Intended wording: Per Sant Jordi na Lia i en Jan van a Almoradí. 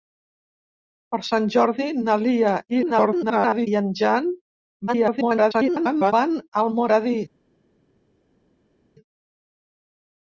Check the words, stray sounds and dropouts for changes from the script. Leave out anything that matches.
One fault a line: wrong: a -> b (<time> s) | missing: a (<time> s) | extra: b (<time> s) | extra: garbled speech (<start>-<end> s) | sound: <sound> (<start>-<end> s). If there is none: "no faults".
extra: garbled speech (2.7-3.7 s)
extra: garbled speech (4.9-6.1 s)